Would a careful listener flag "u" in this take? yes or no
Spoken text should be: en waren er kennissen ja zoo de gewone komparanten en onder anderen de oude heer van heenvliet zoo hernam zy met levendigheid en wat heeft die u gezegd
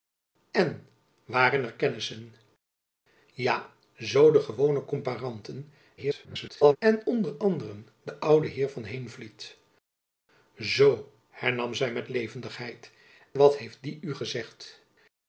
no